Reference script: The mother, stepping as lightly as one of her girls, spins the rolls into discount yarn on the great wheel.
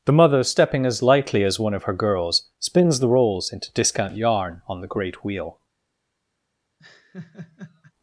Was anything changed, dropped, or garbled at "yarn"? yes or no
no